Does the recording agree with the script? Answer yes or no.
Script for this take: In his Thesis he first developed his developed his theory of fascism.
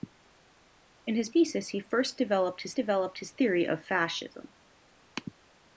yes